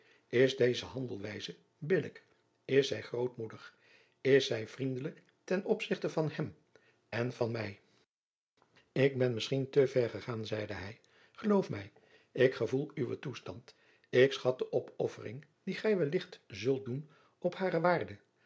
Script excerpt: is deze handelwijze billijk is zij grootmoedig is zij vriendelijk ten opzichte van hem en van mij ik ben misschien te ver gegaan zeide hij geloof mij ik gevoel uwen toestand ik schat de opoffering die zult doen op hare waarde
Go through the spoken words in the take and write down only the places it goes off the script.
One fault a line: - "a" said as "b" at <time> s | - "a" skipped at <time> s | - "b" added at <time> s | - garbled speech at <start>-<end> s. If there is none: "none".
- "gij wellicht" added at 15.8 s